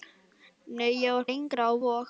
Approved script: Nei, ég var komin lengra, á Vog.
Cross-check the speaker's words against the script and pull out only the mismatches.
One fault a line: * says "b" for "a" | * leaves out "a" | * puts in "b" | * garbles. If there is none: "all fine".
* leaves out "komin"